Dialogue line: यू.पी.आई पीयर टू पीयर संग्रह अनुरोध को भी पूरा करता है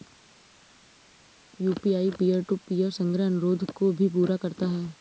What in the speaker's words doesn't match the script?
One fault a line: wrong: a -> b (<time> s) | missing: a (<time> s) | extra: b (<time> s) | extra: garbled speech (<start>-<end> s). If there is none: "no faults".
no faults